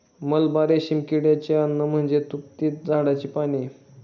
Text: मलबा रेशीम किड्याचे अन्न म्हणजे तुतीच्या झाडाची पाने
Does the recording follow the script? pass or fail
pass